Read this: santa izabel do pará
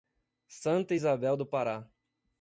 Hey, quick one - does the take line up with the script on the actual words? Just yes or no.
yes